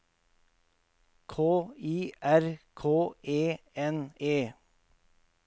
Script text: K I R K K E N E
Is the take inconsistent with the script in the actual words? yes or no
yes